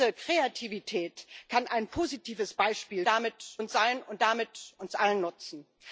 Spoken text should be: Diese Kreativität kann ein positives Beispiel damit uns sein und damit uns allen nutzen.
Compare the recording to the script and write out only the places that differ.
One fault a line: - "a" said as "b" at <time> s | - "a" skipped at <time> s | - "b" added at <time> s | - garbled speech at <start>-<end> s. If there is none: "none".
none